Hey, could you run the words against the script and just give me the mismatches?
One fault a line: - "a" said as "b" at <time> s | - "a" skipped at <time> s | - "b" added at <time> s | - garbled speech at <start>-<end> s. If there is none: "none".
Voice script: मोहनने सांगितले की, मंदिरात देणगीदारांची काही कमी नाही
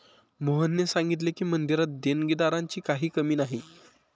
none